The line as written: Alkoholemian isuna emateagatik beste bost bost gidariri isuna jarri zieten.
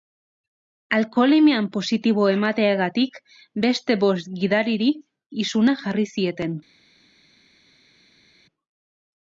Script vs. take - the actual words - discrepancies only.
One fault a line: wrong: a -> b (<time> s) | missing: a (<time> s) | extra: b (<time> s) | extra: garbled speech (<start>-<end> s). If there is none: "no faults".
wrong: isuna -> positibo (1.8 s)
missing: bost (4.3 s)